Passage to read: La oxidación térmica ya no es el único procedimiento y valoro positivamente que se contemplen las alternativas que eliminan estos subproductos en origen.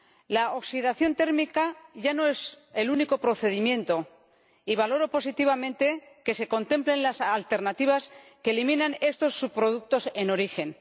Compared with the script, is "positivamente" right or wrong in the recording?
right